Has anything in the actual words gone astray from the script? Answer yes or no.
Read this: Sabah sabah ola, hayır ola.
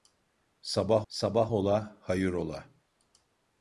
no